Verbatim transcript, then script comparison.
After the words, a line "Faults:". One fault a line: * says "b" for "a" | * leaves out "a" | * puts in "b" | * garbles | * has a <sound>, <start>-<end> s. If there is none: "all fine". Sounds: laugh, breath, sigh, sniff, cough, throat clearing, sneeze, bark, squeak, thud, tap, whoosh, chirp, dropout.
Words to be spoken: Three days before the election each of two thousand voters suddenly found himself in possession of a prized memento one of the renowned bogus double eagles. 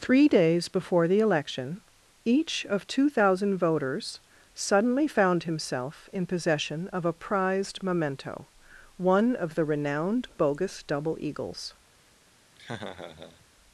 Three days before the election each of two thousand voters suddenly found himself in possession of a prized memento one of the renowned bogus double eagles.
Faults:
* has a laugh, 12.6-13.5 s